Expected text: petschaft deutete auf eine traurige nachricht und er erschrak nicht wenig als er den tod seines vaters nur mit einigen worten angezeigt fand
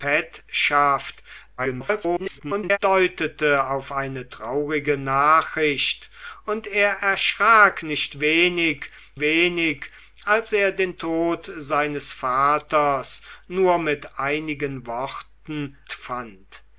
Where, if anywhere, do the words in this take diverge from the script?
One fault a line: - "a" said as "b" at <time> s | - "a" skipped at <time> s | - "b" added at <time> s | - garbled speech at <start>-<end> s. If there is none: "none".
- garbled speech at 1.6-2.8 s
- "wenig" added at 9.2 s
- "angezeigt" skipped at 15.8 s